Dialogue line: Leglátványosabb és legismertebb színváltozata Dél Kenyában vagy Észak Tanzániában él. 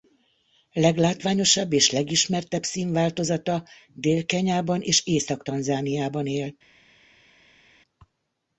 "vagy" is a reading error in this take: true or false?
true